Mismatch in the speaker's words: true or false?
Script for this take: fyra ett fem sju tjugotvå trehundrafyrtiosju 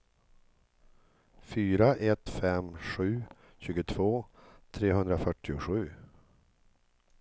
false